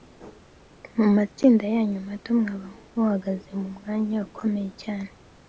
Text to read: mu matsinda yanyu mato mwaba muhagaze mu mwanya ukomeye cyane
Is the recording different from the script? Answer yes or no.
no